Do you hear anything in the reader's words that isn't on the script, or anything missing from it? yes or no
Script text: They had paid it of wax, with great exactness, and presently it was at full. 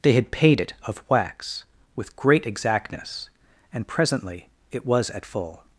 no